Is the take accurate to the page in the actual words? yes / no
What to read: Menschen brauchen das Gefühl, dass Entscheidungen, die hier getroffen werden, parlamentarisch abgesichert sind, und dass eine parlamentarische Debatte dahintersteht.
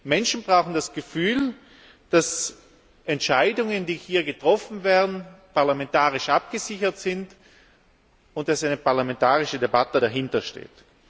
yes